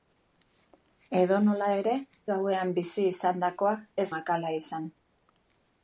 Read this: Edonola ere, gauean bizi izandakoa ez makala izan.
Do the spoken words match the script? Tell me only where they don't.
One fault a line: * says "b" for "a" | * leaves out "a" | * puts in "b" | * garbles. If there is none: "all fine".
all fine